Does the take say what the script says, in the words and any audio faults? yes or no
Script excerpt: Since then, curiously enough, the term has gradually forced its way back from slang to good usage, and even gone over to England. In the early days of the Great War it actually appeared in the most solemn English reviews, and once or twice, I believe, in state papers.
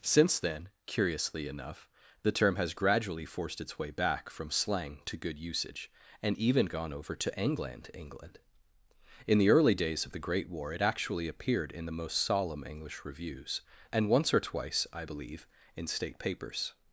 no